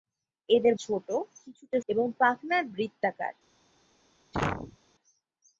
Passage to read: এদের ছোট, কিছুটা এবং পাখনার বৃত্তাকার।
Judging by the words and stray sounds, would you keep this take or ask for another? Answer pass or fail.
fail